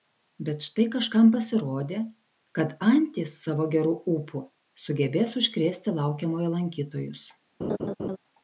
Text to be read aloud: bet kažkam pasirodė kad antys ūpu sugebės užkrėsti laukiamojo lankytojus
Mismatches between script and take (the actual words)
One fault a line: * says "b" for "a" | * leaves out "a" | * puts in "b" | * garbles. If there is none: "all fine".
* puts in "štai"
* puts in "savo geru"